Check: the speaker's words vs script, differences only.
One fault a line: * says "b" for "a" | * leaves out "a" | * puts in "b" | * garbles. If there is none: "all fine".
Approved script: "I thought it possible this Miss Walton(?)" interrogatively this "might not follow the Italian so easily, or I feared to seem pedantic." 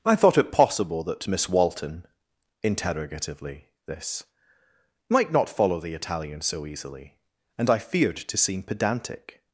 * says "that" for "this"
* says "and" for "or"